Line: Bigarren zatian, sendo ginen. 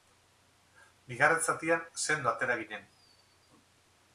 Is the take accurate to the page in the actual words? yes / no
no